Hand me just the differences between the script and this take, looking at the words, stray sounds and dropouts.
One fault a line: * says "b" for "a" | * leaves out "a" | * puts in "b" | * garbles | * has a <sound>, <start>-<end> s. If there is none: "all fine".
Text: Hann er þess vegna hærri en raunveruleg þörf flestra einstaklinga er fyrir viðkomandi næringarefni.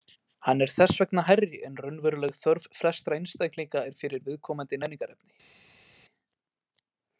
all fine